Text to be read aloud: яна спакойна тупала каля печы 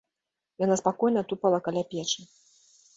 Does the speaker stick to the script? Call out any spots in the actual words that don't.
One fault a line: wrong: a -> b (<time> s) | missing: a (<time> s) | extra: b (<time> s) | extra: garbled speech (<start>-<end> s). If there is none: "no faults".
no faults